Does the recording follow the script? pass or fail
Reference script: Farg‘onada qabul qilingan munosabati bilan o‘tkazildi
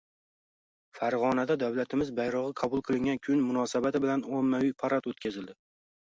fail